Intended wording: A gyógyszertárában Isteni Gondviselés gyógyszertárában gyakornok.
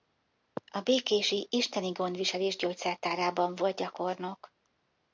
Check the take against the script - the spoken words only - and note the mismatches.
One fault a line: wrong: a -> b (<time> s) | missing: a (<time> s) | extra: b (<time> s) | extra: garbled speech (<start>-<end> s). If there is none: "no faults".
wrong: gyógyszertárában -> békési (0.8 s)
extra: volt (3.5 s)